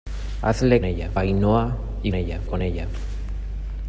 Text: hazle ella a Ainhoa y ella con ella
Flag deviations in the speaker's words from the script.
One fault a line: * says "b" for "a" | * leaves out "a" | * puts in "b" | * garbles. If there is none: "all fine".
all fine